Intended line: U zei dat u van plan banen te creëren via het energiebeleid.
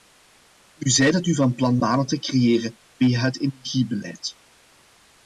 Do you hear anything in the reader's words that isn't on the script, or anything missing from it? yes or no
no